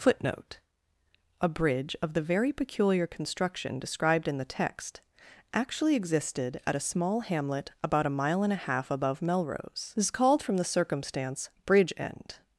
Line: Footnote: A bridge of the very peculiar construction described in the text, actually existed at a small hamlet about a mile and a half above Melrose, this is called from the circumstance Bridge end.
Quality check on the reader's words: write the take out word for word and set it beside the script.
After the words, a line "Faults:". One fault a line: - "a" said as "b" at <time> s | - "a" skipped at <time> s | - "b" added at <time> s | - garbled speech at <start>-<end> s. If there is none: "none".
Footnote: A bridge of the very peculiar construction described in the text, actually existed at a small hamlet about a mile and a half above Melrose, this is called from the circumstance Bridge end.
Faults:
none